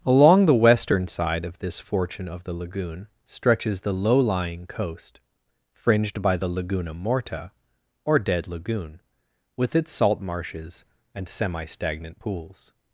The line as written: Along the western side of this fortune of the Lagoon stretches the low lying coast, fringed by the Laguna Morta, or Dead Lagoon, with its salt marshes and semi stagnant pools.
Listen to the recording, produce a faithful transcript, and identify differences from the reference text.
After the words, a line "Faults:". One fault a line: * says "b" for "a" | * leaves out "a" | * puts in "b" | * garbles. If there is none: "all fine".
Along the western side of this fortune of the Lagoon stretches the low lying coast, fringed by the Laguna Morta, or Dead Lagoon, with its salt marshes and semi stagnant pools.
Faults:
all fine